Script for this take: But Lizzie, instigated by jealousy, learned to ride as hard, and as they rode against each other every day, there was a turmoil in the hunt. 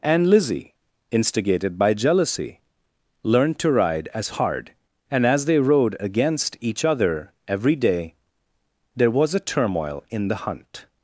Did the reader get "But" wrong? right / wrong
wrong